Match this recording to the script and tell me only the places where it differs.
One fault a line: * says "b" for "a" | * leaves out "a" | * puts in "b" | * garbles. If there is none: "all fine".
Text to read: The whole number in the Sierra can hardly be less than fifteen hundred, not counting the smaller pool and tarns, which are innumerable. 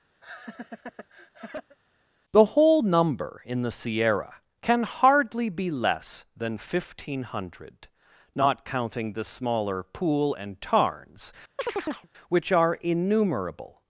all fine